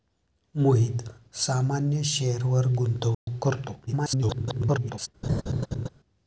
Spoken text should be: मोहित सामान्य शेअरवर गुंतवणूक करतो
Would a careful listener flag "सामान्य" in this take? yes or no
no